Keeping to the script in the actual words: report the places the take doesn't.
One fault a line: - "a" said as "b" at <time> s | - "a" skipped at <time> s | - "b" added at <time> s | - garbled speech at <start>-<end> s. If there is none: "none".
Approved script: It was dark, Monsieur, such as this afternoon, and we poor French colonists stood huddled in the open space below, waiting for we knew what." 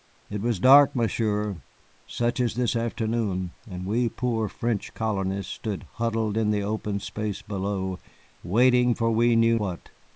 none